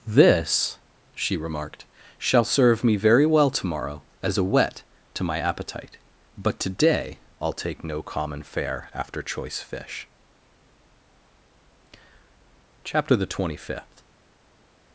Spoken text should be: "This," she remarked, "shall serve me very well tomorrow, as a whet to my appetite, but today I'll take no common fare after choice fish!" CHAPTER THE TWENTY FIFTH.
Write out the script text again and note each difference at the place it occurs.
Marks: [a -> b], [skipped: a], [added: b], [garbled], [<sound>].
"This," she remarked, "shall serve me very well tomorrow, as a whet to my appetite, but today I'll take no common fare after choice fish!" CHAPTER THE TWENTY FIFTH.